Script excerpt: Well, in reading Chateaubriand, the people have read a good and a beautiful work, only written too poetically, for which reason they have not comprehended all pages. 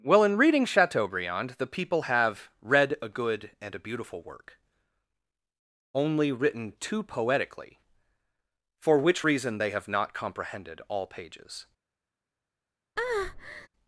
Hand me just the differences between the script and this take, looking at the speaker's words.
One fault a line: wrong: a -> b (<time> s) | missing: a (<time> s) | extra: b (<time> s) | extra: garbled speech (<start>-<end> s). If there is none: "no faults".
no faults